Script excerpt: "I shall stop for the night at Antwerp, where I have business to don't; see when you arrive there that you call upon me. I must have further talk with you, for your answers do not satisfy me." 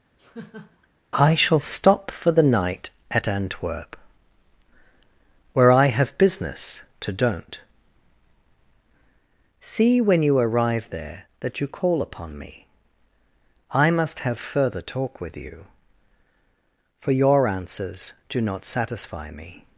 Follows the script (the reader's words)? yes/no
yes